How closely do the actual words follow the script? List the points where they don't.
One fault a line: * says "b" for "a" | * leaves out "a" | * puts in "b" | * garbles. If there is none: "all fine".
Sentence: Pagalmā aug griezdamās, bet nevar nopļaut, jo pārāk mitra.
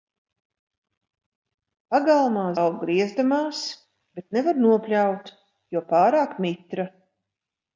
all fine